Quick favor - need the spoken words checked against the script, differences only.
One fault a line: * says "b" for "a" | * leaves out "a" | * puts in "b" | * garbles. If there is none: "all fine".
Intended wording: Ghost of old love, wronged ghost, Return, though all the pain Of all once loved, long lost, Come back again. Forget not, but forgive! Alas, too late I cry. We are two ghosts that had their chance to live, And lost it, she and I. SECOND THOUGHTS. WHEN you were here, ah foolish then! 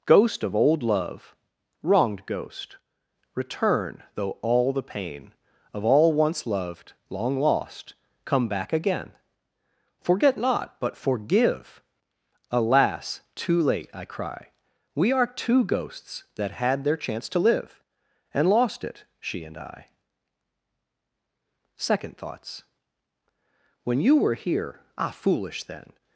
all fine